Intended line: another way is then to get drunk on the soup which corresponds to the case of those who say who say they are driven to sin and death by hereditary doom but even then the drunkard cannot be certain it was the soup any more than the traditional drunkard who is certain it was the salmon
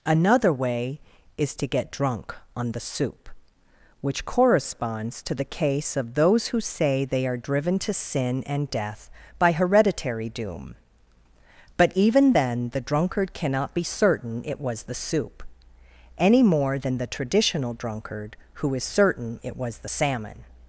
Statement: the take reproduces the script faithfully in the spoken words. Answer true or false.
false